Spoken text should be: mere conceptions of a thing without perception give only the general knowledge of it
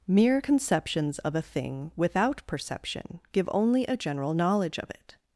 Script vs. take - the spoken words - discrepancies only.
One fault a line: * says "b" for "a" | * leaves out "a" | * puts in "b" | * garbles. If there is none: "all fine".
* says "a" for "the"